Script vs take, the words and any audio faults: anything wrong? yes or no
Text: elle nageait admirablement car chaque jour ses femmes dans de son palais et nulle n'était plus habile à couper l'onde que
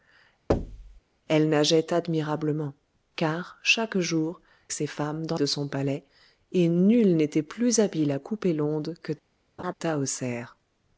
yes